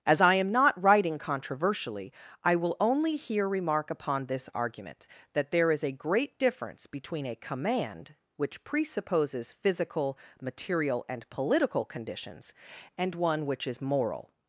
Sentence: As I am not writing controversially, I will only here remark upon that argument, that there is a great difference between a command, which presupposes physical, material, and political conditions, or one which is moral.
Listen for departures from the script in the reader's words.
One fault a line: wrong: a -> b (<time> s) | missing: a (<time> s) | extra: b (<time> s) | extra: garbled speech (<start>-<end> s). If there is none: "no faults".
wrong: that -> this (4.3 s)
wrong: or -> and (13.0 s)